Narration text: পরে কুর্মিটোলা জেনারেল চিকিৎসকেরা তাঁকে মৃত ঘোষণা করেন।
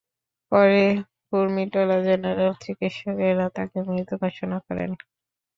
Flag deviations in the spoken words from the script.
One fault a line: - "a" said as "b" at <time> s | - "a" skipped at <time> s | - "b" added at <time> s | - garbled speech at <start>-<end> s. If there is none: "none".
none